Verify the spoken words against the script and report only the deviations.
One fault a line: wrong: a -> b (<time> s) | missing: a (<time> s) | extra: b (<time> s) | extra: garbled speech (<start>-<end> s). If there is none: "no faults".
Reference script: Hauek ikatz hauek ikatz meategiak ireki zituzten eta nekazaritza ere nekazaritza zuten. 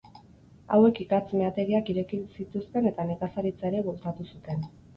missing: hauek ikatz (1.3 s)
wrong: nekazaritza -> bultzatu (3.9 s)